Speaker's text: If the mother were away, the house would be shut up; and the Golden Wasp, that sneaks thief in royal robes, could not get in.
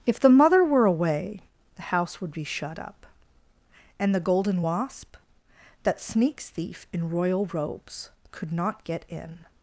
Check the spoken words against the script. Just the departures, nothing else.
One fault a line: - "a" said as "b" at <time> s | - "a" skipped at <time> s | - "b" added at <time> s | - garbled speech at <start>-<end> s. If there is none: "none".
none